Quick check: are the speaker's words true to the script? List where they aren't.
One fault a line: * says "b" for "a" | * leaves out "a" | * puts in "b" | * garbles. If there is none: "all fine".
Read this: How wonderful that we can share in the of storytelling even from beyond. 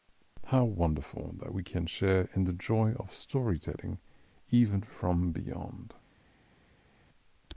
* puts in "joy"